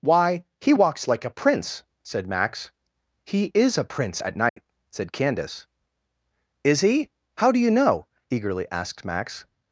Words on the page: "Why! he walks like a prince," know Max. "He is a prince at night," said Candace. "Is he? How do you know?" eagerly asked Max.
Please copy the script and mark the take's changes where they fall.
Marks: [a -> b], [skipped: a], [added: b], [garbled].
"Why! he walks like a prince," [know -> said] Max. "He is a prince at night," said Candace. "Is he? How do you know?" eagerly asked Max.